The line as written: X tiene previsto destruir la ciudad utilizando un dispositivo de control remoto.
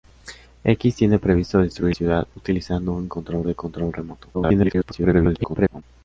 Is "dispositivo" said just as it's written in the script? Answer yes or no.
no